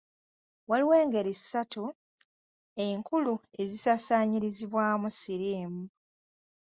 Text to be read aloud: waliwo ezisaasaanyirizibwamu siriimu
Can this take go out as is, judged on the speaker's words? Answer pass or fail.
fail